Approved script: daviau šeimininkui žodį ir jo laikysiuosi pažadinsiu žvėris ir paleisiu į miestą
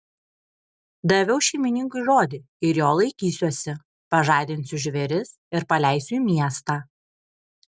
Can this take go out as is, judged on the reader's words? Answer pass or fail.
pass